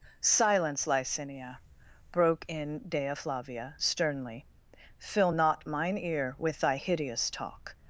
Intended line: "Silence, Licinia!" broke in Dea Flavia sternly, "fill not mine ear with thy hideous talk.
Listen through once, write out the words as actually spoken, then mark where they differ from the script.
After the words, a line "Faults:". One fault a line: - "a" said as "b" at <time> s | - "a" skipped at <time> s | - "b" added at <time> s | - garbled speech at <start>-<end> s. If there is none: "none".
"Silence, Licinia!" broke in Dea Flavia sternly, "fill not mine ear with thy hideous talk.
Faults:
none